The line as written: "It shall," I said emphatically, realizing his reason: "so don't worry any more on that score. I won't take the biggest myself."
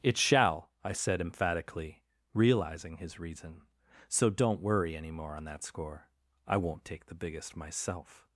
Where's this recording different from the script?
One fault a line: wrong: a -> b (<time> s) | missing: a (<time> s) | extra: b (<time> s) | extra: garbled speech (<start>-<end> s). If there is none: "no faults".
no faults